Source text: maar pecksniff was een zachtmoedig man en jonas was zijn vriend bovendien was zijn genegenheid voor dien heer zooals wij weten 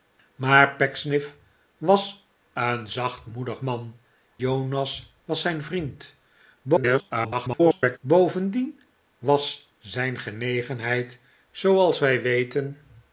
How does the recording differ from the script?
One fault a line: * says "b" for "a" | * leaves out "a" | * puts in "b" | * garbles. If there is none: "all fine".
* leaves out "en"
* garbles
* leaves out "voor dien heer"